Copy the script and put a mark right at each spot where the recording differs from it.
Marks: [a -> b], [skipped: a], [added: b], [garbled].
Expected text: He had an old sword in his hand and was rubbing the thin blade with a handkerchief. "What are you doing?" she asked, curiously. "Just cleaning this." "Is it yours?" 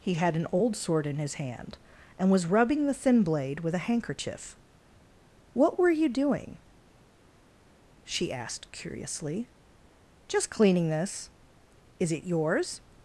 He had an old sword in his hand and was rubbing the thin blade with a handkerchief. "What [are -> were] you doing?" she asked, curiously. "Just cleaning this." "Is it yours?"